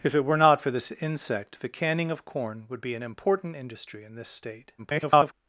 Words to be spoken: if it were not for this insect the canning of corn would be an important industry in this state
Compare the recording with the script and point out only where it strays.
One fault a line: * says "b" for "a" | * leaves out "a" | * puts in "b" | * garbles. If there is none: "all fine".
* garbles